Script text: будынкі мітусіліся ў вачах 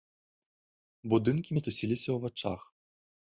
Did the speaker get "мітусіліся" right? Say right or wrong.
right